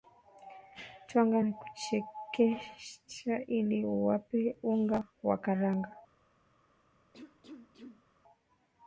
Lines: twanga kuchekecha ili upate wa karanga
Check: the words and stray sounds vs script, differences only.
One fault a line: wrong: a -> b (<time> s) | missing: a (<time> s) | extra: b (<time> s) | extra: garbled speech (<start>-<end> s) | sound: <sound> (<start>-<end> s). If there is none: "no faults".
extra: na (1.4 s)
extra: unga (4.6 s)
sound: cough (7.1-8.0 s)